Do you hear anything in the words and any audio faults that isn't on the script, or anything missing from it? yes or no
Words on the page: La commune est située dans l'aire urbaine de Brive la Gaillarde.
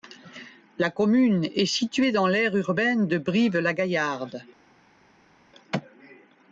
no